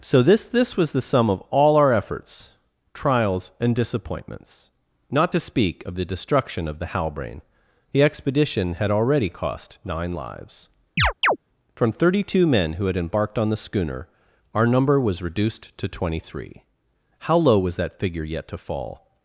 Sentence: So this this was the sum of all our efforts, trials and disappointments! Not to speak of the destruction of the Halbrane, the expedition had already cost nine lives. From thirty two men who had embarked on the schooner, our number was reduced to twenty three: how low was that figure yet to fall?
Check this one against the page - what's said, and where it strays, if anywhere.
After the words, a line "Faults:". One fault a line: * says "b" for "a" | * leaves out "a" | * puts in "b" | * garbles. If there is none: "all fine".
So this this was the sum of all our efforts, trials and disappointments! Not to speak of the destruction of the Halbrane, the expedition had already cost nine lives. From thirty two men who had embarked on the schooner, our number was reduced to twenty three: how low was that figure yet to fall?
Faults:
all fine